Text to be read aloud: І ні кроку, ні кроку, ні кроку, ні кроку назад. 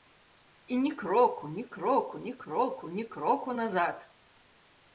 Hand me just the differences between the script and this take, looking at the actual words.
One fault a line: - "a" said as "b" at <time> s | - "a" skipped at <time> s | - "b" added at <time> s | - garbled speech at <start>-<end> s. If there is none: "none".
none